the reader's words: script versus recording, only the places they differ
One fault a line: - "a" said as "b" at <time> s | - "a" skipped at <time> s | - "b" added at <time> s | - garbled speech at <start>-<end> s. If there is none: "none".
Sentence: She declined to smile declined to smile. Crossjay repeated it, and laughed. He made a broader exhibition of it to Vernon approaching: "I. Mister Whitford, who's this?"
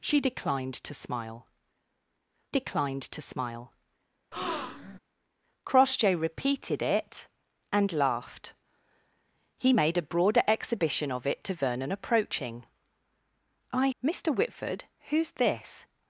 none